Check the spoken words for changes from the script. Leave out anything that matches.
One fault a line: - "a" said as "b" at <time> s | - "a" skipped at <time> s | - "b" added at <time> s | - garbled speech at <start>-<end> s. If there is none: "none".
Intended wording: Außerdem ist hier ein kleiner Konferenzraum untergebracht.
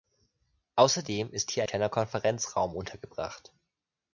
- "ein" skipped at 1.6 s